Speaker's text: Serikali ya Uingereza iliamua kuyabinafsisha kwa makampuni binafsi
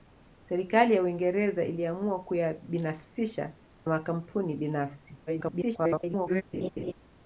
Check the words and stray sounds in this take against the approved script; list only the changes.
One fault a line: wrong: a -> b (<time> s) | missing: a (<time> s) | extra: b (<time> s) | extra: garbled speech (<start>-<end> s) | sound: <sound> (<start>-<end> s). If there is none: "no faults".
missing: kwa (3.5 s)
extra: garbled speech (5.3-6.4 s)
sound: laugh (6.5-6.9 s)